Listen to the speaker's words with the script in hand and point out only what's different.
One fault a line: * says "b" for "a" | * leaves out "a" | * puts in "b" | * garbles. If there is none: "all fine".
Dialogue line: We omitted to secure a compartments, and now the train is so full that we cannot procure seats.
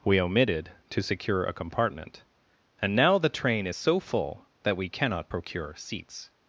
* says "compartment" for "compartments"